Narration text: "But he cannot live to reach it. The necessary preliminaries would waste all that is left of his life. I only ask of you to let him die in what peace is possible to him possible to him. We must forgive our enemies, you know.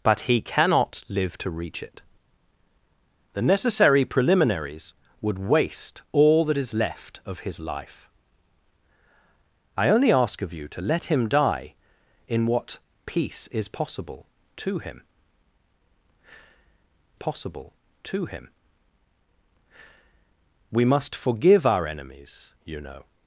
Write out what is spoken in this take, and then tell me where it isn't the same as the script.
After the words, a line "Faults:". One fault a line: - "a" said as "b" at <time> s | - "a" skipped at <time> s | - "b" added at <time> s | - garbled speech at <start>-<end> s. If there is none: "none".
"But he cannot live to reach it. The necessary preliminaries would waste all that is left of his life. I only ask of you to let him die in what peace is possible to him possible to him. We must forgive our enemies, you know.
Faults:
none